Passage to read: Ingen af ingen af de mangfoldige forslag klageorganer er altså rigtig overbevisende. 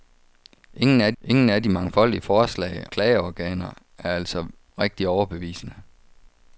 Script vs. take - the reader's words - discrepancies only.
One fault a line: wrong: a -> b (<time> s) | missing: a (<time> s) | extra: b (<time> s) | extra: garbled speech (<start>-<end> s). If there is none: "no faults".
no faults